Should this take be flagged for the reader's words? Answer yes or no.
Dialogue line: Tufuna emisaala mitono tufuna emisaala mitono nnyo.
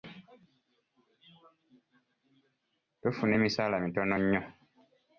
yes